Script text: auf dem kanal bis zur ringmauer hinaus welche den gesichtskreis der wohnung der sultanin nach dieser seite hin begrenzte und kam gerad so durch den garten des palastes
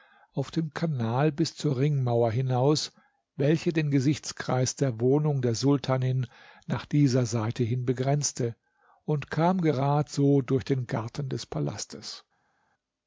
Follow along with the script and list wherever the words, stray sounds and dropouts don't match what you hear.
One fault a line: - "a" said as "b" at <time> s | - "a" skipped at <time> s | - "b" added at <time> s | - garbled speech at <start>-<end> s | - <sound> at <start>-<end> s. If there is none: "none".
none